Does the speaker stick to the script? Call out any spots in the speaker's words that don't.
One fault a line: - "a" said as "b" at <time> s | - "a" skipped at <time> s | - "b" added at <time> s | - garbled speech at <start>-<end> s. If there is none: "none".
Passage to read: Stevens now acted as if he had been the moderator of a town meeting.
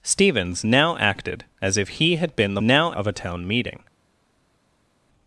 - "moderator" said as "now" at 2.6 s